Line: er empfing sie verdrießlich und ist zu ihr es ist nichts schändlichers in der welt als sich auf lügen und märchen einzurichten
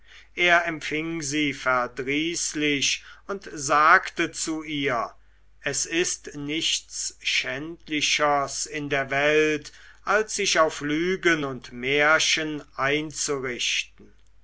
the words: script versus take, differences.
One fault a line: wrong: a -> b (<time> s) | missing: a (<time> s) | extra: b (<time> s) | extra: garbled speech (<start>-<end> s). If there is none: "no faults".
wrong: ist -> sagte (3.5 s)